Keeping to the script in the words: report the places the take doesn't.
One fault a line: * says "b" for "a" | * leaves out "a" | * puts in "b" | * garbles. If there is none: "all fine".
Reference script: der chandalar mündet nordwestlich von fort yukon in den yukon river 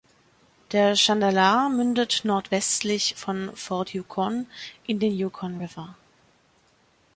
all fine